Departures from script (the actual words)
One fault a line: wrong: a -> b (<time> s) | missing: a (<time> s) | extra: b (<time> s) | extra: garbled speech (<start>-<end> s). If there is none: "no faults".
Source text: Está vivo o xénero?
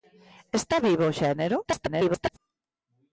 extra: garbled speech (1.6-2.4 s)